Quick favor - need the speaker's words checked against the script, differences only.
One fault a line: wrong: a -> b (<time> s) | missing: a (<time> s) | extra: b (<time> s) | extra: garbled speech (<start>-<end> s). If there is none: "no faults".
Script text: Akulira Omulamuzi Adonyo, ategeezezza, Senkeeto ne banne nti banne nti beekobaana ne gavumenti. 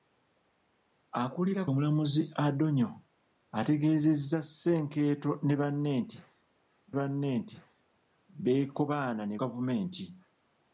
no faults